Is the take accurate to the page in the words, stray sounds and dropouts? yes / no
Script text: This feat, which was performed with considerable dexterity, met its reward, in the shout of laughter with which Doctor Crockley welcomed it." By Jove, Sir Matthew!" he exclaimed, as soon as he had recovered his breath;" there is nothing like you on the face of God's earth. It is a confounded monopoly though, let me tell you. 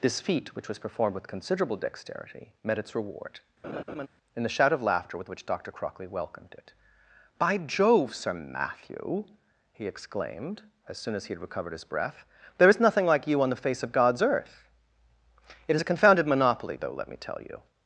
no